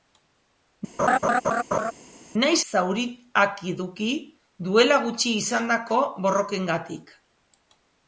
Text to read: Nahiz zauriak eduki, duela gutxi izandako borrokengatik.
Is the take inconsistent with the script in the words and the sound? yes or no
yes